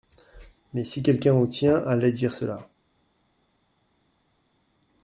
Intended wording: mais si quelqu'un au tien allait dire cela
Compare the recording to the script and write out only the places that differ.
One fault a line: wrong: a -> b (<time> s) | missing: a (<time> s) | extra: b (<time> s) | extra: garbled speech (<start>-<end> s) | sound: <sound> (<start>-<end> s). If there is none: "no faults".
no faults